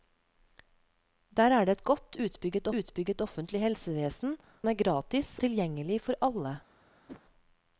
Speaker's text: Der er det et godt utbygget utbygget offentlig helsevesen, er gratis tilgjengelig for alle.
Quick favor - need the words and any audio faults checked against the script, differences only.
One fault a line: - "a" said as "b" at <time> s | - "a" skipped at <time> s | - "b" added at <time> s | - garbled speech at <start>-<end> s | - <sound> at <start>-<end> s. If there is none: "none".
- whoosh at 7.1-7.2 s